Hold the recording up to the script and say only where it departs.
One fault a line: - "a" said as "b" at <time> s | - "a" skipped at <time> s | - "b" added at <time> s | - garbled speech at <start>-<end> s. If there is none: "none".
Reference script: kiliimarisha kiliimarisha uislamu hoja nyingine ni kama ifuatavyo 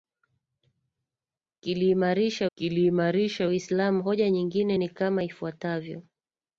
none